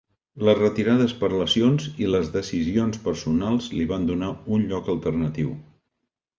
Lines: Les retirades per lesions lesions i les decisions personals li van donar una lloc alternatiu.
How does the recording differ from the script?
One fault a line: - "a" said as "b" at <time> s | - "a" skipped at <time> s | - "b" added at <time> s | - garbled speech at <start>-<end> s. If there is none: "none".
- "lesions" skipped at 1.9 s
- "una" said as "un" at 4.6 s